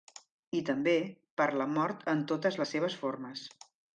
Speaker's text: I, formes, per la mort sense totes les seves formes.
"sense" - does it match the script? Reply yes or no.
no